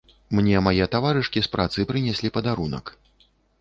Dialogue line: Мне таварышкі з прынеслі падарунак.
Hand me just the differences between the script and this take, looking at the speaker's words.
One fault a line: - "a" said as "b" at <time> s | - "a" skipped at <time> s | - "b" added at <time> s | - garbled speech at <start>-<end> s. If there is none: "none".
- "мае" added at 0.7 s
- "працы" added at 1.6 s